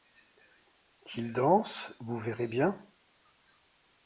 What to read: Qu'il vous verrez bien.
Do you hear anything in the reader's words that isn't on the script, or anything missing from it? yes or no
yes